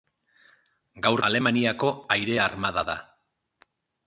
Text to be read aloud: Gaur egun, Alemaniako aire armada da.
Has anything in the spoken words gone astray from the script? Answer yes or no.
yes